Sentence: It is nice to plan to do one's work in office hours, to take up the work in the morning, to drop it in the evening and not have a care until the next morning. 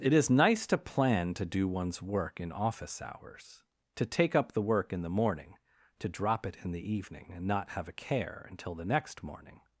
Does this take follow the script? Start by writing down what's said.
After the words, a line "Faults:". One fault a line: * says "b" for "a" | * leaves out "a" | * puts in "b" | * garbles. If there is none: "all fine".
It is nice to plan to do one's work in office hours, to take up the work in the morning, to drop it in the evening and not have a care until the next morning.
Faults:
all fine